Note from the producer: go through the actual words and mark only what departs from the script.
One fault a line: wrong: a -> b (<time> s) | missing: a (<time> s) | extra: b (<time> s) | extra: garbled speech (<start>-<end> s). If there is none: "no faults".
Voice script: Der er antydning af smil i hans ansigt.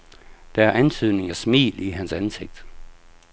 no faults